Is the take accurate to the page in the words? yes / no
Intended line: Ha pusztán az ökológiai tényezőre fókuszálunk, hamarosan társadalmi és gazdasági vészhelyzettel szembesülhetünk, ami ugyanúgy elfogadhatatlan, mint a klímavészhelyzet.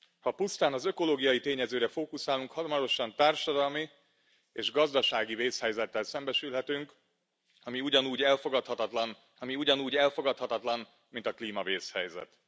no